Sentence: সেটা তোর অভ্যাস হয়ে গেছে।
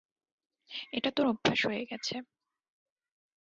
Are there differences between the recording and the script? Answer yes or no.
yes